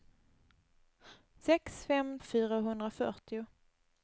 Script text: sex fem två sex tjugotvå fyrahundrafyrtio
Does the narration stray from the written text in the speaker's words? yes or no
yes